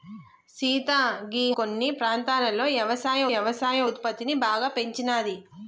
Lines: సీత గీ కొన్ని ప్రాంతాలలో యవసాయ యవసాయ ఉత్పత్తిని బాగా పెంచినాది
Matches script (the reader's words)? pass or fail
pass